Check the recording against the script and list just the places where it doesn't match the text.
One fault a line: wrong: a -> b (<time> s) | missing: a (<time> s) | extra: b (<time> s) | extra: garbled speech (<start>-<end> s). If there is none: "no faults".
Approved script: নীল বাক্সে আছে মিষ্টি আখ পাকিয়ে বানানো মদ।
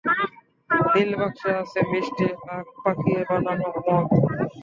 no faults